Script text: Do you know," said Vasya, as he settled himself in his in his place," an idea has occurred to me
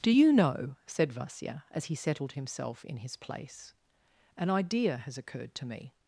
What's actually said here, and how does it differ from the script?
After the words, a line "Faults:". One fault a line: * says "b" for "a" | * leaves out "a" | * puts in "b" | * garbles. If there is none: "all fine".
Do you know," said Vasya, as he settled himself in his place," an idea has occurred to me
Faults:
* leaves out "in his"